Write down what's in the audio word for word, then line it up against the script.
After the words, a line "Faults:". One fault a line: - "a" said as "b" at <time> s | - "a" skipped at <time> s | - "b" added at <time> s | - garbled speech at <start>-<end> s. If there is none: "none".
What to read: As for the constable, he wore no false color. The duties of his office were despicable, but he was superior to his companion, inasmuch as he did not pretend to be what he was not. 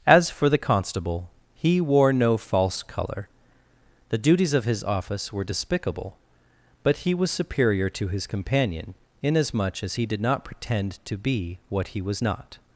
As for the constable, he wore no false color. The duties of his office were despicable, but he was superior to his companion, inasmuch as he did not pretend to be what he was not.
Faults:
none